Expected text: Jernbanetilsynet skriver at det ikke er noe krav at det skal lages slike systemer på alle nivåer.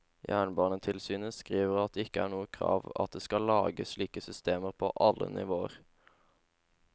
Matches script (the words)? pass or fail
pass